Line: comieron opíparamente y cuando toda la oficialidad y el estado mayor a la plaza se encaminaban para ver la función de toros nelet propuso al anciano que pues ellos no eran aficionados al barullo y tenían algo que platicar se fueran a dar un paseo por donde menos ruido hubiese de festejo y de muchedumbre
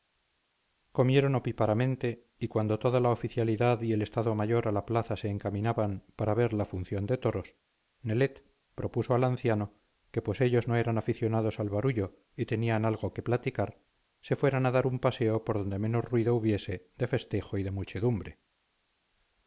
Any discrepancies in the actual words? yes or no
no